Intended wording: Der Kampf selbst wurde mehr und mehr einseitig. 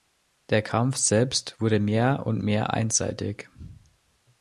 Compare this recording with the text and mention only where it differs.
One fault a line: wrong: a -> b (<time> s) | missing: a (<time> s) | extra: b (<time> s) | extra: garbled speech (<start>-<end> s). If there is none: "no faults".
no faults